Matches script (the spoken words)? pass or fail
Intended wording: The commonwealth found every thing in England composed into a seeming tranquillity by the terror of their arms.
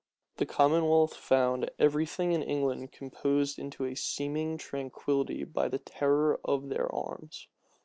pass